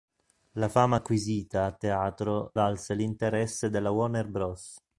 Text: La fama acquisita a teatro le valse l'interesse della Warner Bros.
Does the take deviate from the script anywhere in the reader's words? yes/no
yes